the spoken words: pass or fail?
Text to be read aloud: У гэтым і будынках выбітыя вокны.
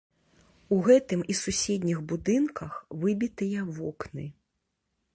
fail